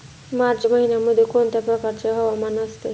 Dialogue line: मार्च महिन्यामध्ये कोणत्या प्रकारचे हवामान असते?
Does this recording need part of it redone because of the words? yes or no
no